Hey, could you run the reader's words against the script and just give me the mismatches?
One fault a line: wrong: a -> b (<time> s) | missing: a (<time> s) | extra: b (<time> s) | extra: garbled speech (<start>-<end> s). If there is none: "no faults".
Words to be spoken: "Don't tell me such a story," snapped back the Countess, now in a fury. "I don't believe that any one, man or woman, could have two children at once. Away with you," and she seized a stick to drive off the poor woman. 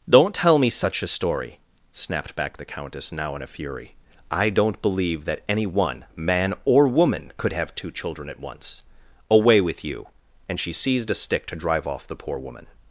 no faults